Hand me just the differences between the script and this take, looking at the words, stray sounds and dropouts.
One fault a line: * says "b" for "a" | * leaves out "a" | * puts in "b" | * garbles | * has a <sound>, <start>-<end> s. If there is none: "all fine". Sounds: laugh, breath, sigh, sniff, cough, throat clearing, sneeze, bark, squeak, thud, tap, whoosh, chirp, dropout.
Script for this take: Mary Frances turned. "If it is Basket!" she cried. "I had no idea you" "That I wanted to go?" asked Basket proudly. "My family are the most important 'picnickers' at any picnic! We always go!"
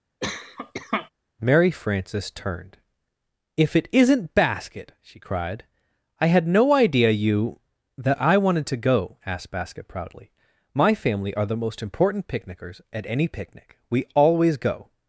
* has a cough, 0.2-1.1 s
* says "isn't" for "is"